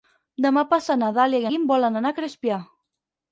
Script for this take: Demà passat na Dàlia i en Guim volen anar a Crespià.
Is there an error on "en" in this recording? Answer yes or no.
yes